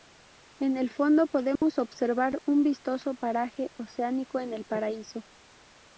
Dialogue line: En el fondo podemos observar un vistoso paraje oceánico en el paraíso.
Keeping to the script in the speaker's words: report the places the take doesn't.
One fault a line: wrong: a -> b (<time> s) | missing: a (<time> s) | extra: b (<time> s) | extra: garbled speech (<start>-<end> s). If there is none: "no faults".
no faults